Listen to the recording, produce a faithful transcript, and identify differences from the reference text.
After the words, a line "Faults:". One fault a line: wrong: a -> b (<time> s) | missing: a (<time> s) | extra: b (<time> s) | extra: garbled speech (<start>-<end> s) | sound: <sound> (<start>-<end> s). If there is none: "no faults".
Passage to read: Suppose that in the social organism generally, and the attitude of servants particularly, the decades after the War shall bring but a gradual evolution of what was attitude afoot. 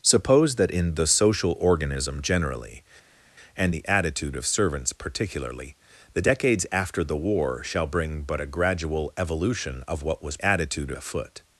Suppose that in the social organism generally, and the attitude of servants particularly, the decades after the War shall bring but a gradual evolution of what was attitude afoot.
Faults:
no faults